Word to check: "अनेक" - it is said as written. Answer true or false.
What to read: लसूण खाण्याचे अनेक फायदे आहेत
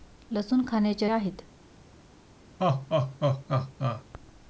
false